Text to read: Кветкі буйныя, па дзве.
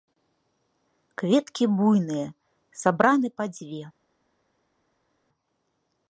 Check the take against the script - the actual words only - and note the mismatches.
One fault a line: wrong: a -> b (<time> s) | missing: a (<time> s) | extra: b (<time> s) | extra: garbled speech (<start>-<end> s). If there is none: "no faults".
extra: сабраны (2.9 s)